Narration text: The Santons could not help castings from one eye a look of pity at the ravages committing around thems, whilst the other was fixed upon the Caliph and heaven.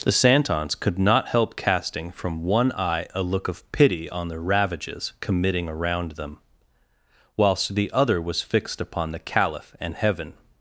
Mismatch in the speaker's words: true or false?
true